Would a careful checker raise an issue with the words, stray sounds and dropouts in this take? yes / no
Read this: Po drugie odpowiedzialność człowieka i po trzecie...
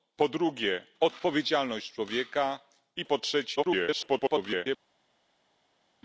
yes